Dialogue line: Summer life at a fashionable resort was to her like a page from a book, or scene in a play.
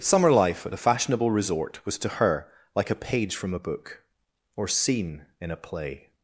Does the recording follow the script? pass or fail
pass